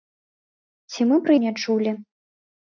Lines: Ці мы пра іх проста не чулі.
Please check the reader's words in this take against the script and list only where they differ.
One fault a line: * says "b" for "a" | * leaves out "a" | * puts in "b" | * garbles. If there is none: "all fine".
* leaves out "іх проста"